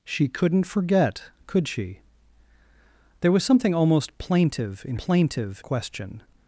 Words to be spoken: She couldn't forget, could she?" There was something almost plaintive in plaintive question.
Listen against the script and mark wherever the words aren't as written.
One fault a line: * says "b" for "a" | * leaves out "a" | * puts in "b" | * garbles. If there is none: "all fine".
all fine